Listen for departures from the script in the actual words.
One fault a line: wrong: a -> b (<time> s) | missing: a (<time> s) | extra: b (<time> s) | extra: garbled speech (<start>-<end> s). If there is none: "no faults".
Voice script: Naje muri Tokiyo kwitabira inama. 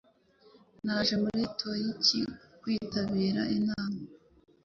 no faults